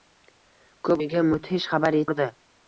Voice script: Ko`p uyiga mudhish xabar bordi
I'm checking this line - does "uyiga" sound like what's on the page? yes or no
yes